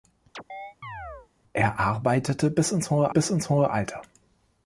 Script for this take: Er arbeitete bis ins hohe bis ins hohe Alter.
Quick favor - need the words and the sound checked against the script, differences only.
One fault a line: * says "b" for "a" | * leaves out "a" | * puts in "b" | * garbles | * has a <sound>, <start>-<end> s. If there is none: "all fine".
* has a chirp, 0.3-1.3 s